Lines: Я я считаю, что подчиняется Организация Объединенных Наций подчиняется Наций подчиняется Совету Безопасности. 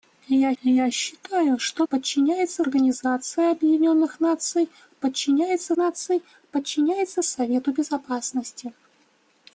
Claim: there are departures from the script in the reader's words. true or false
false